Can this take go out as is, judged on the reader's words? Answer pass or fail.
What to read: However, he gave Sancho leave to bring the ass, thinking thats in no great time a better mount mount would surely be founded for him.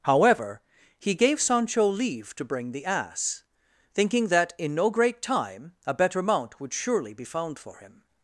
fail